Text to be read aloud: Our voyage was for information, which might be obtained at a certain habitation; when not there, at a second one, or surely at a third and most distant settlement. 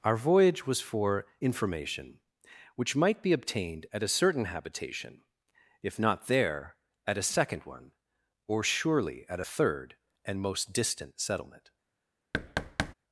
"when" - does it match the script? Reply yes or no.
no